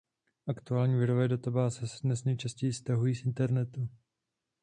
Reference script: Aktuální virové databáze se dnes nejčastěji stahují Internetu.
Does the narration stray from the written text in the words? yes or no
yes